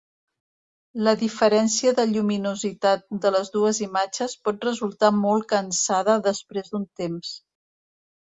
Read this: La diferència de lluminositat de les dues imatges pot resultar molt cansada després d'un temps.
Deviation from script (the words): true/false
false